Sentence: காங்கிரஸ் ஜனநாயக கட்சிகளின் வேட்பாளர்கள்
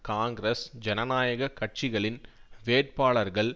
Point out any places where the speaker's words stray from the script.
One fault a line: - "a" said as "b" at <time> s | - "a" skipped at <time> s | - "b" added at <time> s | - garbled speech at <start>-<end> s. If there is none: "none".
none